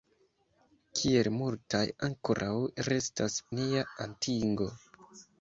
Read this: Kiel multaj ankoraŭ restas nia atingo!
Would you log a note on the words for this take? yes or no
no